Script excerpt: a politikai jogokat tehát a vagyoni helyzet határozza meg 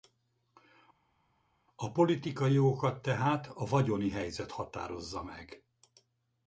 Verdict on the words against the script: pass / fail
pass